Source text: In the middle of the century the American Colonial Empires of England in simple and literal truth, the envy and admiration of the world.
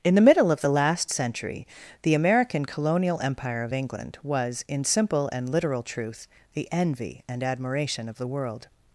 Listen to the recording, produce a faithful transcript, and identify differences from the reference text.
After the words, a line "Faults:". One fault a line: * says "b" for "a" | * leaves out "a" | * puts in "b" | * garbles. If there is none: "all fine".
In the middle of the last century the American Colonial Empire of England was, in simple and literal truth, the envy and admiration of the world.
Faults:
* puts in "last"
* says "Empire" for "Empires"
* puts in "was"